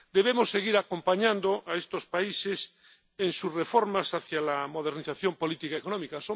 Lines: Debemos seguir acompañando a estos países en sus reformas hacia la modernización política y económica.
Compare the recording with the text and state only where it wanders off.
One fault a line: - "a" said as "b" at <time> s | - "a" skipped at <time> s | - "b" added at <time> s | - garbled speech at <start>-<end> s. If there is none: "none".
none